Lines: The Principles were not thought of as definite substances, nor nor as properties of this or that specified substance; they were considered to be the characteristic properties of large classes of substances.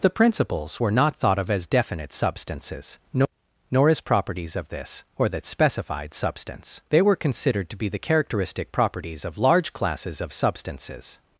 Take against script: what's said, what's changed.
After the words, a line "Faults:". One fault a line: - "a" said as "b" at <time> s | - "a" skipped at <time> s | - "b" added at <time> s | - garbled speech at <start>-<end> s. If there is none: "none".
The Principles were not thought of as definite substances, nor nor as properties of this or that specified substance; they were considered to be the characteristic properties of large classes of substances.
Faults:
none